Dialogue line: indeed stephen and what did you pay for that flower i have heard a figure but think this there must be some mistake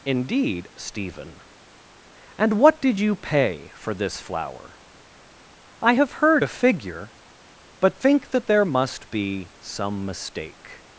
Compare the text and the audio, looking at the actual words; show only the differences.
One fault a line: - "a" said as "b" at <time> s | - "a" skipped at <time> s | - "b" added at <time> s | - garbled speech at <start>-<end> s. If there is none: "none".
- "that" said as "this" at 3.9 s
- "this" said as "that" at 8.3 s